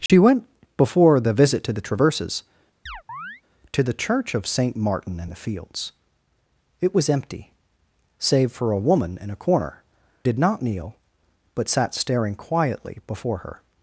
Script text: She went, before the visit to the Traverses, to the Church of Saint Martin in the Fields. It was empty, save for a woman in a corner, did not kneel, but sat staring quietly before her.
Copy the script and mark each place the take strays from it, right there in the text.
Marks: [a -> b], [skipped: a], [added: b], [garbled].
She went, before the visit to the Traverses, to the Church of Saint Martin in the Fields. It was empty, save for a woman in a corner, did not kneel, but sat staring quietly before her.